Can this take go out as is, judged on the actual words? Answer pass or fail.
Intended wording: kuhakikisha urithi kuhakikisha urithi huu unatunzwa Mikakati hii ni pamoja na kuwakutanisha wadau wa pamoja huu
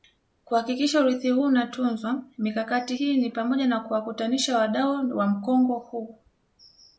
fail